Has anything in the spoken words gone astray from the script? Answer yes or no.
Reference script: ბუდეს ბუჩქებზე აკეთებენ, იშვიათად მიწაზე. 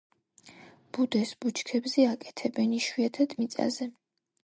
no